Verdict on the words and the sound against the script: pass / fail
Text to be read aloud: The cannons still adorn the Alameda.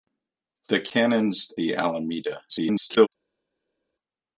fail